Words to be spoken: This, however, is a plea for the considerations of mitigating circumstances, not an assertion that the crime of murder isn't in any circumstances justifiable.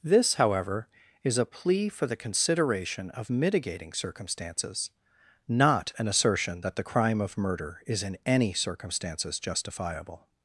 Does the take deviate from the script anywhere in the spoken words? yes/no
yes